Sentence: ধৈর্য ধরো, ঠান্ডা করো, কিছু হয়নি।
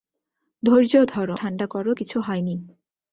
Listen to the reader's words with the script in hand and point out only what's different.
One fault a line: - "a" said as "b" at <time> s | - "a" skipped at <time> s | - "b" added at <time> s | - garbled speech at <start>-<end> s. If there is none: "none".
none